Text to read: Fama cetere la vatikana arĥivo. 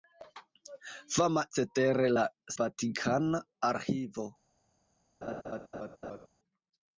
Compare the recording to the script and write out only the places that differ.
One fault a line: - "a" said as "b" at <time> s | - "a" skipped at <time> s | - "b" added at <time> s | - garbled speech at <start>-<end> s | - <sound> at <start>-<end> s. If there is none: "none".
- laugh at 5.2-6.3 s